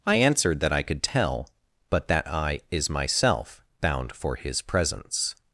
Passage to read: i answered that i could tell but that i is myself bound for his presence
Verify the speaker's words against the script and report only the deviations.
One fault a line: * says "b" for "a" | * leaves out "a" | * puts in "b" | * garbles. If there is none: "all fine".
all fine